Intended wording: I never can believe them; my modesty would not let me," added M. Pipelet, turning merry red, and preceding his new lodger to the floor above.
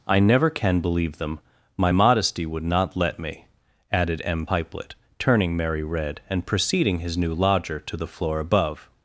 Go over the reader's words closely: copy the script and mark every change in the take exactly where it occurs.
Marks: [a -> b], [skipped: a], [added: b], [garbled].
I never can believe them; my modesty would not let me," added M. Pipelet, turning merry red, and preceding his new lodger to the floor above.